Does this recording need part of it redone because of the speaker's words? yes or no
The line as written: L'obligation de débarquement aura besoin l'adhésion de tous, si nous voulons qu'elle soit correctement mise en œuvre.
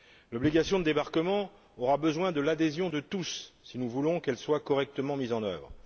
yes